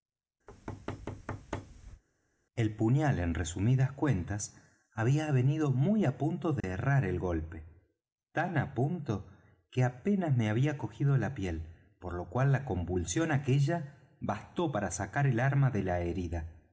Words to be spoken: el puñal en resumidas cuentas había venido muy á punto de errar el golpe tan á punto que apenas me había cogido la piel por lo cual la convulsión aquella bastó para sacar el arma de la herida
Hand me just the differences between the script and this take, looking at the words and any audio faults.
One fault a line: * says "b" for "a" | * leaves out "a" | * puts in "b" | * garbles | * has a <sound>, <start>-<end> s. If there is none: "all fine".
* has a thud, 0.5-2.0 s
* has a dropout, 6.6-6.6 s